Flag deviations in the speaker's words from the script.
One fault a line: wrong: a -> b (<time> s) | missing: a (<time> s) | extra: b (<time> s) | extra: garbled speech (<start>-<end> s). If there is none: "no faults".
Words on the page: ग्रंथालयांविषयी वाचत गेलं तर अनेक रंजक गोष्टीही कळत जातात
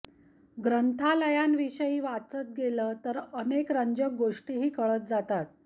no faults